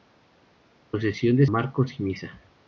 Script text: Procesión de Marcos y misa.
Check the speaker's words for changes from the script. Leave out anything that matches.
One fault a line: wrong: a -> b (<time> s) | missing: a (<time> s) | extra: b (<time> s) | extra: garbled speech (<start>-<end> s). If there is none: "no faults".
no faults